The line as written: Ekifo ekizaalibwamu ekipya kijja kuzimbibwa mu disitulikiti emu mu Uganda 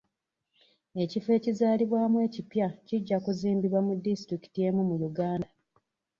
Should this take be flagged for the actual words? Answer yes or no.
no